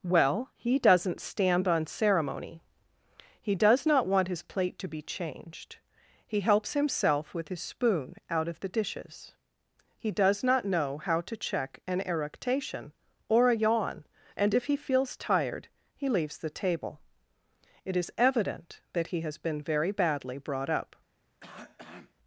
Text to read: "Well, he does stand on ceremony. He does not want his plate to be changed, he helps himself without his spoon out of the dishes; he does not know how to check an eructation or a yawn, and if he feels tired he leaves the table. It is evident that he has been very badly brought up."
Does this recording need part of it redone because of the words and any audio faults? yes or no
yes